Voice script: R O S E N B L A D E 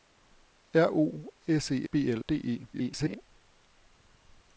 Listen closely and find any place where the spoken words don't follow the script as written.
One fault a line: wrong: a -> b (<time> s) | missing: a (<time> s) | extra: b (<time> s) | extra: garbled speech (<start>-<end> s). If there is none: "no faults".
missing: N (1.9 s)
missing: A (2.2 s)
extra: garbled speech (2.7-3.2 s)